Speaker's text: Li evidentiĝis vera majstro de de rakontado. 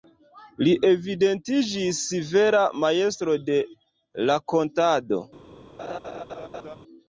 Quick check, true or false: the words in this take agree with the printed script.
false